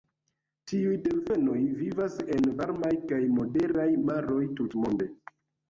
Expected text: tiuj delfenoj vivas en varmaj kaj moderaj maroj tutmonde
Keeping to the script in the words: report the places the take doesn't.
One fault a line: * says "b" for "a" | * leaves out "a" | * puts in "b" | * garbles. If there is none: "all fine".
all fine